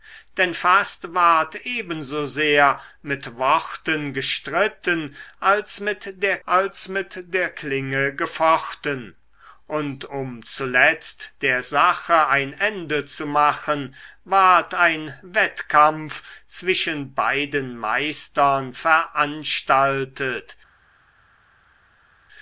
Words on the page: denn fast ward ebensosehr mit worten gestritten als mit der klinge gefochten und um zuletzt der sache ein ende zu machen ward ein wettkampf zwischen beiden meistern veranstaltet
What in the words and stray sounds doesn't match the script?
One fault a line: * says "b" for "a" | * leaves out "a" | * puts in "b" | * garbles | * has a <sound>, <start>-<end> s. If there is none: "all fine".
* puts in "als mit der"